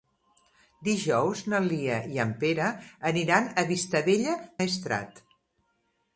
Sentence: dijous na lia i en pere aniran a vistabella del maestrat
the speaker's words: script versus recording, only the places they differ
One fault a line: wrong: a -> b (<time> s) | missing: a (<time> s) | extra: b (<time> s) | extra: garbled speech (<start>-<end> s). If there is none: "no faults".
missing: del (4.3 s)